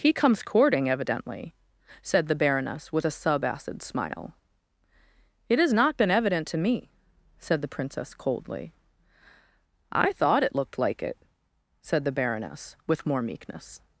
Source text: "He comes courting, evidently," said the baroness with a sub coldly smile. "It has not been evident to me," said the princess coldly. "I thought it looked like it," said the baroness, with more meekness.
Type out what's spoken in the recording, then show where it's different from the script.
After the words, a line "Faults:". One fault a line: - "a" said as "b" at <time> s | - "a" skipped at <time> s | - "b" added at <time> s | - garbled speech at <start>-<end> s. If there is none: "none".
"He comes courting, evidently," said the baroness with a sub acid smile. "It has not been evident to me," said the princess coldly. "I thought it looked like it," said the baroness, with more meekness.
Faults:
- "coldly" said as "acid" at 3.4 s